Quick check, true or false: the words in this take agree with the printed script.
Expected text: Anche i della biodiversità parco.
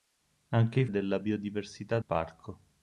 true